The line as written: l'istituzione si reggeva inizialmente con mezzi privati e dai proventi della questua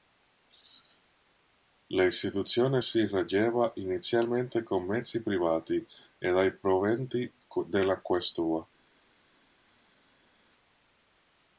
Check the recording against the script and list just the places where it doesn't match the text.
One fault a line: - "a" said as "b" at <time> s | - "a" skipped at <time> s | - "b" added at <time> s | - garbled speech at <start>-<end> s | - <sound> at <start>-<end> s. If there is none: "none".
none